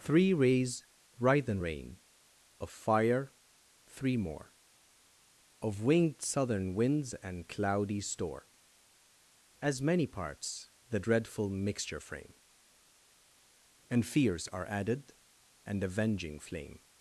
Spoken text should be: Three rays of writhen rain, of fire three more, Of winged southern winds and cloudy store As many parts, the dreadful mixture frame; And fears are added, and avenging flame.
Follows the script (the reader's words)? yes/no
no